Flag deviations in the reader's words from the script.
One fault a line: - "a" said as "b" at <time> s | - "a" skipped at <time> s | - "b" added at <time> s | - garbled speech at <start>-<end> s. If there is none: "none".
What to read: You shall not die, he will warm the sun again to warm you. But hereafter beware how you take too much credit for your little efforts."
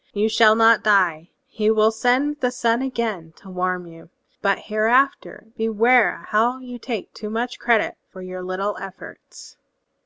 - "warm" said as "send" at 1.9 s